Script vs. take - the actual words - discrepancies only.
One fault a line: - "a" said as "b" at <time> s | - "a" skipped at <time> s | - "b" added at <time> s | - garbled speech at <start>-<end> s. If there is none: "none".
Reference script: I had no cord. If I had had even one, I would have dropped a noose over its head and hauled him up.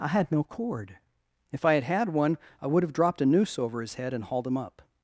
- "even" skipped at 2.1 s
- "its" said as "his" at 3.8 s